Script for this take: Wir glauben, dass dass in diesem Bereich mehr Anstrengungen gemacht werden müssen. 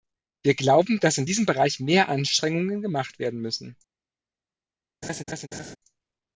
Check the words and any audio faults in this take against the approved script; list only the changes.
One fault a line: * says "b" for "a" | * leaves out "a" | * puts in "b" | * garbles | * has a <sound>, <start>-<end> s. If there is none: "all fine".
* leaves out "dass"
* has a laugh, 5.0-5.8 s